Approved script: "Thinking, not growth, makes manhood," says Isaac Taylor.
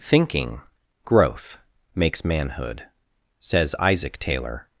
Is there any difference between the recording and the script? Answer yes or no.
yes